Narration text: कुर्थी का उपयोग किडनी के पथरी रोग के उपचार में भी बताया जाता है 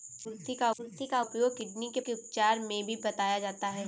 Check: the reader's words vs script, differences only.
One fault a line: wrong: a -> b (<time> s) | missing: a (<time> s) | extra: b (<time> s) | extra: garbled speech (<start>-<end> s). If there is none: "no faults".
extra: कुर्थी का (0.8 s)
missing: पथरी रोग (2.0 s)